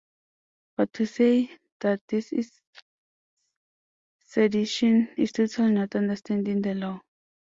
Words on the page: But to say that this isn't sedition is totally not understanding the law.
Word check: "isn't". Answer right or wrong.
wrong